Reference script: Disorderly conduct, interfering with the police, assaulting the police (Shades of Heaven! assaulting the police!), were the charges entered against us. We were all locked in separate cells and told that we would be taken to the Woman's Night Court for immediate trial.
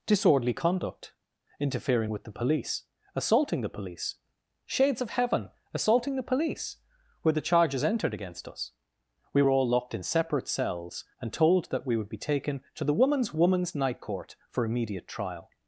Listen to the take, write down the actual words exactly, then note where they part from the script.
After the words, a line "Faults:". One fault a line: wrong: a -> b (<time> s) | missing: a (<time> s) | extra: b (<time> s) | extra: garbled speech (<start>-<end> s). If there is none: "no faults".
Disorderly conduct, interfering with the police, assaulting the police (Shades of Heaven! assaulting the police!), were the charges entered against us. We were all locked in separate cells and told that we would be taken to the Woman's Woman's Night Court for immediate trial.
Faults:
extra: Woman's (13.3 s)